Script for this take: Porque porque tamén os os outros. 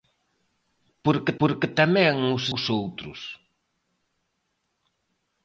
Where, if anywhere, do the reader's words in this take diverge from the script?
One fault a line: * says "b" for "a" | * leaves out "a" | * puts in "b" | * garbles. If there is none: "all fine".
all fine